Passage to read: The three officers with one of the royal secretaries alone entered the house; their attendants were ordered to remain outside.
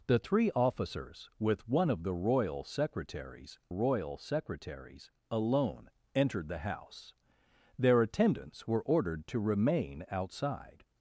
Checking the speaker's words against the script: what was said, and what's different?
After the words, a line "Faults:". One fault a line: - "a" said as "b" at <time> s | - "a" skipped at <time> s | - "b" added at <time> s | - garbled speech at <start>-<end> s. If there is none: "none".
The three officers with one of the royal secretaries royal secretaries alone entered the house; their attendants were ordered to remain outside.
Faults:
- "royal secretaries" added at 3.7 s